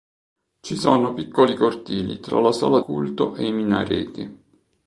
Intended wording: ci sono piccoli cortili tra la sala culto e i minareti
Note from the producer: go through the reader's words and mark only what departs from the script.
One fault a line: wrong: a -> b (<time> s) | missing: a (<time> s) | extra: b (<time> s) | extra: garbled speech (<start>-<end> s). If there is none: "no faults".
no faults